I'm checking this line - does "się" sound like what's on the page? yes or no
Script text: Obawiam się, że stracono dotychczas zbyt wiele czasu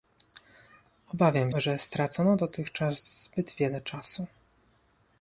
no